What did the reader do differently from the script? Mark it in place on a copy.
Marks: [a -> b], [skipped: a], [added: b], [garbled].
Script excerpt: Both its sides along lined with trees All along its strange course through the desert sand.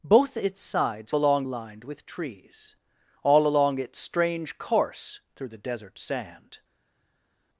Both its sides along lined with trees All along its strange course through the desert sand.